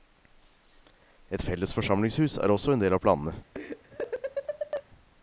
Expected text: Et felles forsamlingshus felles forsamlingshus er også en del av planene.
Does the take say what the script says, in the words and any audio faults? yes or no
no